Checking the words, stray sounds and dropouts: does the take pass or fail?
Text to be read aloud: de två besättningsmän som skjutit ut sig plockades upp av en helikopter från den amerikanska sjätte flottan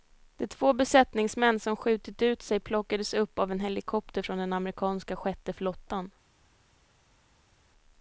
pass